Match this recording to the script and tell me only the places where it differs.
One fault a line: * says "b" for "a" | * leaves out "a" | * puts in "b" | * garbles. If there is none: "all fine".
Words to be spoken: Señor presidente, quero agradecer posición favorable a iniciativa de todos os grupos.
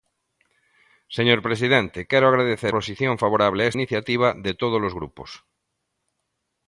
all fine